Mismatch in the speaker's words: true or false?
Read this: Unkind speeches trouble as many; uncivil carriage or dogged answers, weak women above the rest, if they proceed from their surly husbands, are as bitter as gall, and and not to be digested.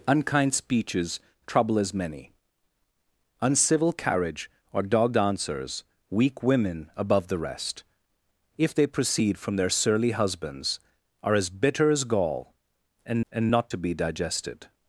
false